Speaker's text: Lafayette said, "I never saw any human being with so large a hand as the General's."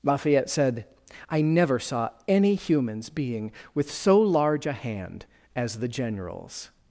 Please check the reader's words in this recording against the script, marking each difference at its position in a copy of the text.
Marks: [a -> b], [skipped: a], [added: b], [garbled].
Lafayette said, "I never saw any [human -> humans] being with so large a hand as the General's."